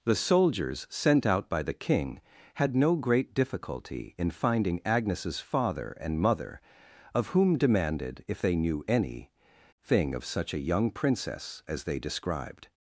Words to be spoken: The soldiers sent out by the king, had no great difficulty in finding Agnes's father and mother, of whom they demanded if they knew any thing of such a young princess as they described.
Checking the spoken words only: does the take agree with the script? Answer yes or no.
no